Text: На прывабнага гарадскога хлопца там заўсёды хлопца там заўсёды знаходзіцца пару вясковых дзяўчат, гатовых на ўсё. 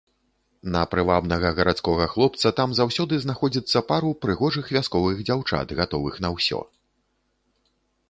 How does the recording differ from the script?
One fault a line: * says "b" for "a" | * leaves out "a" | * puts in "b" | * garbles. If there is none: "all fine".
* leaves out "хлопца там заўсёды"
* puts in "прыгожых"